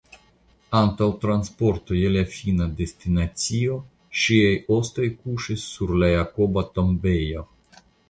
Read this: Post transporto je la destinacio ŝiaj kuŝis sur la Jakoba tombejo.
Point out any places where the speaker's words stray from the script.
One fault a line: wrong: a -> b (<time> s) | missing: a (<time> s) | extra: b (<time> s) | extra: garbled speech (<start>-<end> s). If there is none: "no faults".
wrong: Post -> Antaŭ (0.8 s)
extra: fina (2.4 s)
extra: ostoj (4.8 s)